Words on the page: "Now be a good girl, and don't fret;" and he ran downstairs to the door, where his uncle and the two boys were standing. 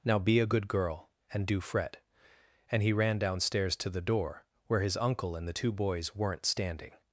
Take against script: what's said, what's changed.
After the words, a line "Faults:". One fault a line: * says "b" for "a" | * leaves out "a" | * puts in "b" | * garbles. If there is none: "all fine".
"Now be a good girl, and do fret;" and he ran downstairs to the door, where his uncle and the two boys weren't standing.
Faults:
* says "do" for "don't"
* says "weren't" for "were"